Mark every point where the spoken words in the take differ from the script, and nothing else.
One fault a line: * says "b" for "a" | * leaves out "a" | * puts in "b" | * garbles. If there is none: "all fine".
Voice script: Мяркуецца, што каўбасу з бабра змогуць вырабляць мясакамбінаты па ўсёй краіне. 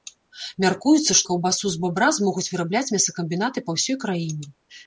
all fine